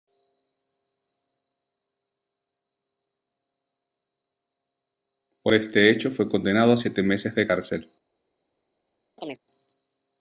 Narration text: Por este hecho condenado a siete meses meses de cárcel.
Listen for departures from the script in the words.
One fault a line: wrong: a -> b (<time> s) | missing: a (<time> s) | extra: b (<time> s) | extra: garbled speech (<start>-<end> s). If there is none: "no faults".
extra: fue (6.1 s)
missing: meses (7.3 s)